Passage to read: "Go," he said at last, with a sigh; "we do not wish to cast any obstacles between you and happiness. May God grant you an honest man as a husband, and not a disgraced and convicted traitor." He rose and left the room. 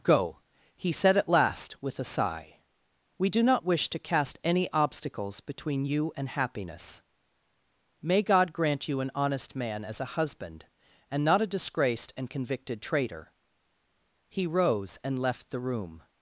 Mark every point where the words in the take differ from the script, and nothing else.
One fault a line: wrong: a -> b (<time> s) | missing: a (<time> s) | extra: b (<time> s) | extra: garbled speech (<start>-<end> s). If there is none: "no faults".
no faults